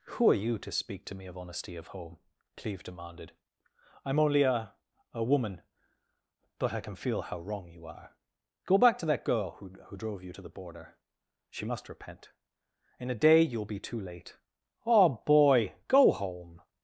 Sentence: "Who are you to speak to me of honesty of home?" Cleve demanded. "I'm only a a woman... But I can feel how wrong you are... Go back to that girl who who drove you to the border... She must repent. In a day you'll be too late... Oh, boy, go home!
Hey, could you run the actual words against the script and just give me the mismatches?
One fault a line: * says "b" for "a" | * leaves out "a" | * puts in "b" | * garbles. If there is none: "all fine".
all fine